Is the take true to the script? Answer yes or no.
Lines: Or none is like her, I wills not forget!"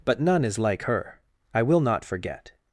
no